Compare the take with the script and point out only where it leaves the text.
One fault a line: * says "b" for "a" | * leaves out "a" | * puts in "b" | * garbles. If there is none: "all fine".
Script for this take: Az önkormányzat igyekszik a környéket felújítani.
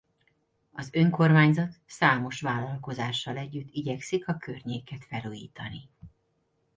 * puts in "számos vállalkozással együtt"